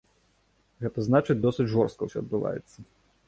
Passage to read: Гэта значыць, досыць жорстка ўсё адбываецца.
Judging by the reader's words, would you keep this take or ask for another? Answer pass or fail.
pass